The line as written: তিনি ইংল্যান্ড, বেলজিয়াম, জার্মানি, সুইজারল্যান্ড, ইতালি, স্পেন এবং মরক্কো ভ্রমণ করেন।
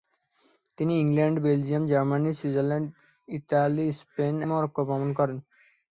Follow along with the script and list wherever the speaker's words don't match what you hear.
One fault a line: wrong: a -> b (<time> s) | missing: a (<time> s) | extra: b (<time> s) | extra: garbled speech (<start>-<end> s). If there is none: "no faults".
missing: এবং (4.3 s)